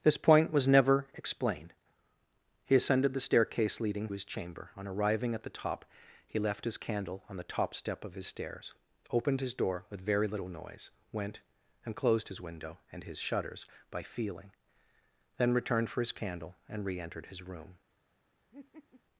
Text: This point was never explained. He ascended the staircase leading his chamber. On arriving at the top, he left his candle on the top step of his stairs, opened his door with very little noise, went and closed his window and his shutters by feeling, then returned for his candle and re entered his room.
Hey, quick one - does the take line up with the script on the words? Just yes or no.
yes